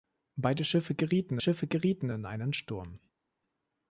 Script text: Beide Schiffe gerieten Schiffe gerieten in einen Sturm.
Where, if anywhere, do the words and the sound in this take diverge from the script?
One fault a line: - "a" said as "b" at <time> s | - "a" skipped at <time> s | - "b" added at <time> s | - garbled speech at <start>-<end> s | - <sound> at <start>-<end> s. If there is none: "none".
none